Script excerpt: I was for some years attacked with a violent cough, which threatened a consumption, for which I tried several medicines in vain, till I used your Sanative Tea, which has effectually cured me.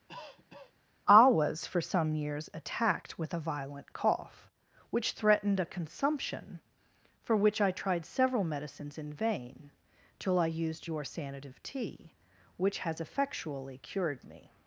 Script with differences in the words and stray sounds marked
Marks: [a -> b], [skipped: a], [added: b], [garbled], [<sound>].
[cough] I was for some years attacked with a violent cough, which threatened a consumption, for which I tried several medicines in vain, till I used your Sanative Tea, which has effectually cured me.